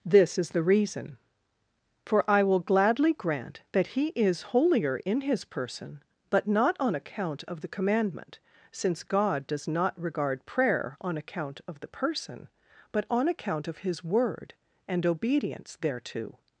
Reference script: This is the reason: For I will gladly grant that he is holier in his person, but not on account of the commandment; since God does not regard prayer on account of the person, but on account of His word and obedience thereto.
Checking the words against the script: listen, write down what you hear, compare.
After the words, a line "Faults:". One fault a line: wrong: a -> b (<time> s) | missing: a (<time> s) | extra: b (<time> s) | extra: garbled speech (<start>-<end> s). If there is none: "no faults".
This is the reason: For I will gladly grant that he is holier in his person, but not on account of the commandment; since God does not regard prayer on account of the person, but on account of His word and obedience thereto.
Faults:
no faults